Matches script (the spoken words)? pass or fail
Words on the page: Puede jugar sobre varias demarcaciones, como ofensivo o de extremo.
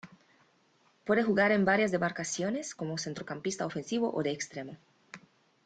fail